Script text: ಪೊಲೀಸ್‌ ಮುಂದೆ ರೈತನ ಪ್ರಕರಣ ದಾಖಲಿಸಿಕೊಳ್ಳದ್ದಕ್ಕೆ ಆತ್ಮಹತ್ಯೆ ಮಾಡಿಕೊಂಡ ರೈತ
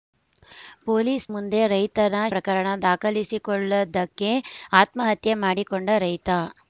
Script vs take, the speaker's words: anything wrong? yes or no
no